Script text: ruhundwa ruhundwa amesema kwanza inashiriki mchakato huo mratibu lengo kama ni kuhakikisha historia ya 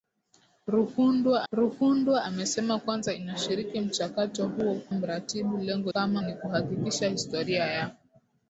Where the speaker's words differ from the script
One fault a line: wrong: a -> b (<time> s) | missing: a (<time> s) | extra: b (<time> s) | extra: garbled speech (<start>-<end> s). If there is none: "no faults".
no faults